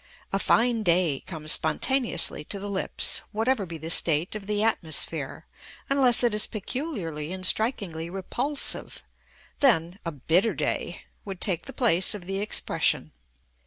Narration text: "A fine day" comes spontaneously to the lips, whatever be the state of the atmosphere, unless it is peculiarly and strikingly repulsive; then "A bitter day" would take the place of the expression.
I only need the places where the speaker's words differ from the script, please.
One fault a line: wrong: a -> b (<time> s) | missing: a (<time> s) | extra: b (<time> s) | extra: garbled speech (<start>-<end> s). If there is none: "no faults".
no faults